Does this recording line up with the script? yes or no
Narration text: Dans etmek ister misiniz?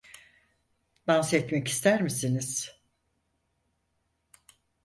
yes